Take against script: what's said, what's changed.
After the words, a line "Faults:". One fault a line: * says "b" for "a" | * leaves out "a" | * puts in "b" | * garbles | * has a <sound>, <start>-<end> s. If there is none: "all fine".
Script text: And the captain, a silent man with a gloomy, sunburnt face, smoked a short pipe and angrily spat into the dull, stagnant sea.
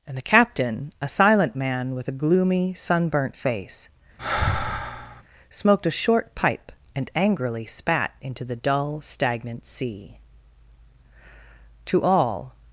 And the captain, a silent man with a gloomy, sunburnt face, smoked a short pipe and angrily spat into the dull, stagnant sea. To all
Faults:
* has a sigh, 4.2-5.2 s
* puts in "To all"